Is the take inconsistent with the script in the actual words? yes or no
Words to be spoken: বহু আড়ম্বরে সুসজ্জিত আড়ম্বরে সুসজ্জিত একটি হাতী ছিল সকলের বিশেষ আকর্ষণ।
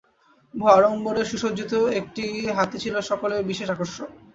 yes